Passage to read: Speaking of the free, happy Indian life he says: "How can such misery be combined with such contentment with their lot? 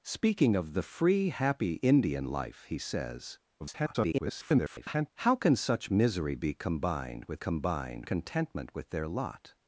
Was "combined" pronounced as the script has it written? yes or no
yes